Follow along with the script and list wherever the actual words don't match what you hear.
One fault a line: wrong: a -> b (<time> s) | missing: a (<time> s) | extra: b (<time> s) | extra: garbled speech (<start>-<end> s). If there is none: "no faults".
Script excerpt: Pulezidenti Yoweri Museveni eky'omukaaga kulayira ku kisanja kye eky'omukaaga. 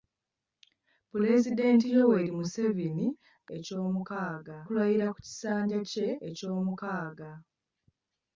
no faults